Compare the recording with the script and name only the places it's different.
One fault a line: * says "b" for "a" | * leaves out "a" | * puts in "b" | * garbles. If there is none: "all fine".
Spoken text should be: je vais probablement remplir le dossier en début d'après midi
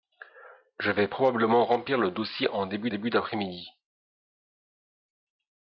* puts in "début"